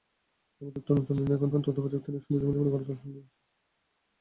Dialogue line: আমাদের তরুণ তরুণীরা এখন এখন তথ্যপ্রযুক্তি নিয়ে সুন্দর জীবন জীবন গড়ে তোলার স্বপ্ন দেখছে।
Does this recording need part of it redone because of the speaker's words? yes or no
no